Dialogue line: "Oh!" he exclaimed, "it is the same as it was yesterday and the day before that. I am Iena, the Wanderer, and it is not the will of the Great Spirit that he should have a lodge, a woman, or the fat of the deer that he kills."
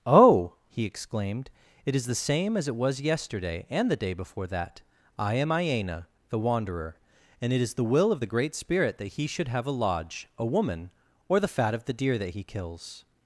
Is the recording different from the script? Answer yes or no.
yes